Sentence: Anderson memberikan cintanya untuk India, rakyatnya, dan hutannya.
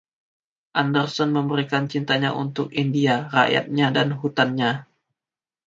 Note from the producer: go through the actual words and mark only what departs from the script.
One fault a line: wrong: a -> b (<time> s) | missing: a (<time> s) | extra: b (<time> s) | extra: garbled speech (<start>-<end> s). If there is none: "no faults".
no faults